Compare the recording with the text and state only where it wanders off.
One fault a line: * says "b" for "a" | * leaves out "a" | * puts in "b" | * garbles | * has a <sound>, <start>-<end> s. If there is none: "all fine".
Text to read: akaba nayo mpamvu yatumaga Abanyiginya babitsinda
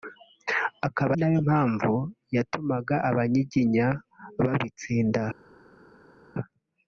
all fine